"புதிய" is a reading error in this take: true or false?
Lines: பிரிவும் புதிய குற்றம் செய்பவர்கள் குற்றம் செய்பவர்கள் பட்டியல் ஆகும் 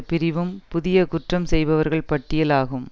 false